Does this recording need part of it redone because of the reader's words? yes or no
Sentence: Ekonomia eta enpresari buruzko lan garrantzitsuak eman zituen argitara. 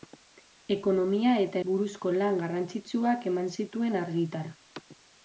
yes